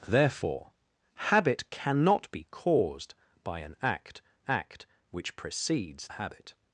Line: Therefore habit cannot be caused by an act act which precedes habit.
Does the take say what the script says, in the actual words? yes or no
yes